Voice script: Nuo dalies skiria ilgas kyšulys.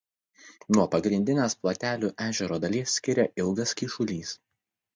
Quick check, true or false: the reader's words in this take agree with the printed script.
false